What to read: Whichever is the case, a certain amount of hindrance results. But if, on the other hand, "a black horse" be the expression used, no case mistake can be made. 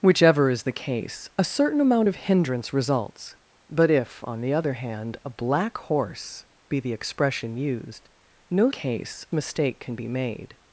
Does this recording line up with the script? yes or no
yes